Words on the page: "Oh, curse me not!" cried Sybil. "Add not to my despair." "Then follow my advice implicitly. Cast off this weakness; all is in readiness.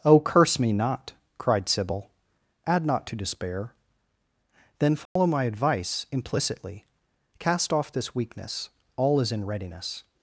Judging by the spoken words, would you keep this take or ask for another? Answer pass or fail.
fail